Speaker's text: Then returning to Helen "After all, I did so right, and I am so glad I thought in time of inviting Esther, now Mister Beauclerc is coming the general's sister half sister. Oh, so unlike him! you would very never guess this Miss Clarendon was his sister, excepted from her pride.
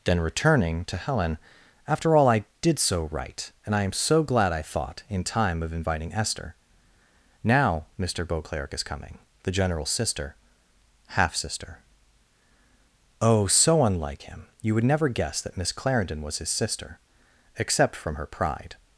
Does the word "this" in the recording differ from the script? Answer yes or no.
yes